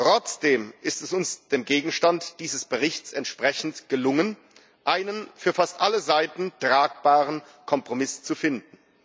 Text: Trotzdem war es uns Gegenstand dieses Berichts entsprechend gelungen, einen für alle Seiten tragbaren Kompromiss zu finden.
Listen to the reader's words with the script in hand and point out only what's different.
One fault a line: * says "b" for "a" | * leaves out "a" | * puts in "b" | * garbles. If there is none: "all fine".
* says "ist" for "war"
* puts in "dem"
* puts in "fast"